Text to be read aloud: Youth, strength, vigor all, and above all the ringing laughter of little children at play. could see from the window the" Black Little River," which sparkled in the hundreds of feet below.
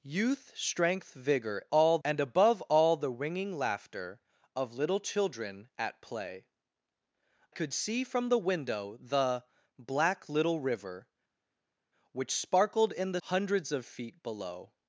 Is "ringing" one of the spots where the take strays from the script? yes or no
no